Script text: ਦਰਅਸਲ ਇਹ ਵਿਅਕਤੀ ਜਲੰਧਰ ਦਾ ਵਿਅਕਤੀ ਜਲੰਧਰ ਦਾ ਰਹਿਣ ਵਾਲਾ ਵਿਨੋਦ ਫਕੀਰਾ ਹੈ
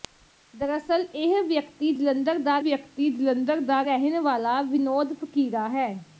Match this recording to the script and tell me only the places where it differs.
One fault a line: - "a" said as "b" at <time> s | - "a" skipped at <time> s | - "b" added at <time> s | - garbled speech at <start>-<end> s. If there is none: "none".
none